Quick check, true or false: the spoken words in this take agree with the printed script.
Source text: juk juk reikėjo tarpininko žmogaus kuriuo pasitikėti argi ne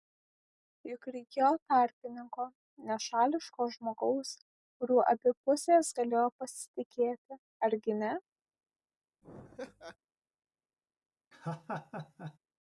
false